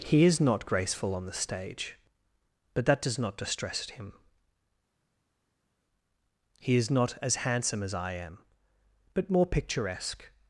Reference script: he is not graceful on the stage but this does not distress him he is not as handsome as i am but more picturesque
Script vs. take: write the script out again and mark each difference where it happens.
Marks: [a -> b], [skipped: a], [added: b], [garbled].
he is not graceful on the stage but [this -> that] does not distress him he is not as handsome as i am but more picturesque